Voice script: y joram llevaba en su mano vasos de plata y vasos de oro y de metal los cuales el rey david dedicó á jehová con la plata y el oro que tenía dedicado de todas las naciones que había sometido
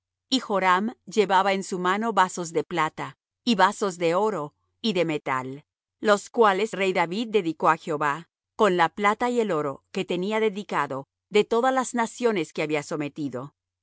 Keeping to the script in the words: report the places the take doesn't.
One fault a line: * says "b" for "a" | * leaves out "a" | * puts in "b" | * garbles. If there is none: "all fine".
* leaves out "el"